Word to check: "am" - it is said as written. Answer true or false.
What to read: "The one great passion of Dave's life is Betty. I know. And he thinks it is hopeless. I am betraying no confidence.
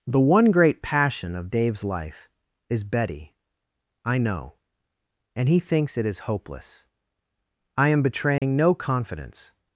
true